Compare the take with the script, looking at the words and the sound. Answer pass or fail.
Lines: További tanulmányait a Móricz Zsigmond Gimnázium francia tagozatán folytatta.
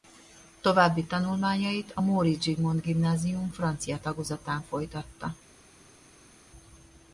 pass